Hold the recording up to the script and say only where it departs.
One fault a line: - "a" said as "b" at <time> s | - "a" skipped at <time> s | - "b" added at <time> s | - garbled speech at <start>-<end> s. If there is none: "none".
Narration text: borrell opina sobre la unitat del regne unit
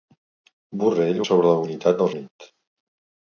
- "opina" skipped at 1.2 s
- "regne" skipped at 2.1 s